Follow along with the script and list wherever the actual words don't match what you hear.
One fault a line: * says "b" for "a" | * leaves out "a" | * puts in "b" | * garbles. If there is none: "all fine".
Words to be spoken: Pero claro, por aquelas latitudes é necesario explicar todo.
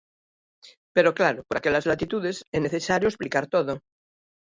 all fine